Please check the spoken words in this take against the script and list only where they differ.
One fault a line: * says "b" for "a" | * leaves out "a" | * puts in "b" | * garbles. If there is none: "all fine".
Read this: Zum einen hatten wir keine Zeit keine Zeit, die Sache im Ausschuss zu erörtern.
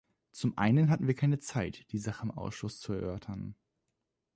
* leaves out "keine Zeit"